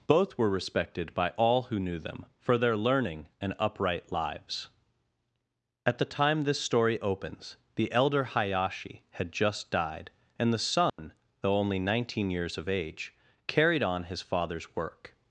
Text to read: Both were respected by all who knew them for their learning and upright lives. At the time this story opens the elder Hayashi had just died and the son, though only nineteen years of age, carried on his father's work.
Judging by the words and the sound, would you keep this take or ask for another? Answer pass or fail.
fail